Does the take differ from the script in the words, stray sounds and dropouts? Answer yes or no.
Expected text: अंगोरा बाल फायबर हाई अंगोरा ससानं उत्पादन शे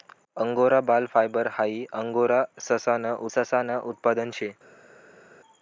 yes